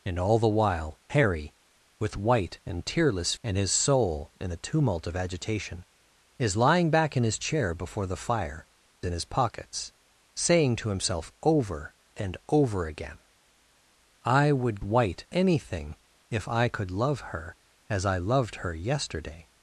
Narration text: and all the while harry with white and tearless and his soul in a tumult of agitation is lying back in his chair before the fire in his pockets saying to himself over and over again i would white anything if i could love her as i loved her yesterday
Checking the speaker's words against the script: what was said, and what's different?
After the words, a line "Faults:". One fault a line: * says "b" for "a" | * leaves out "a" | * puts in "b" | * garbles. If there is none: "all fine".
and all the while harry with white and tearless and his soul in a tumult of agitation is lying back in his chair before the fire in his pockets saying to himself over and over again i would white anything if i could love her as i loved her yesterday
Faults:
all fine